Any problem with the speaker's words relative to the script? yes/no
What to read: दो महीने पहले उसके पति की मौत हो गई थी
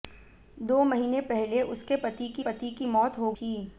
yes